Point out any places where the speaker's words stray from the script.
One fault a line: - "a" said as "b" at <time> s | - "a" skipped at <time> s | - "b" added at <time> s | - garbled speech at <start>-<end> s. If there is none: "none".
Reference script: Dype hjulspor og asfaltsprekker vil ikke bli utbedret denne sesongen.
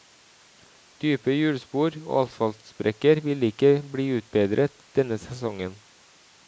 none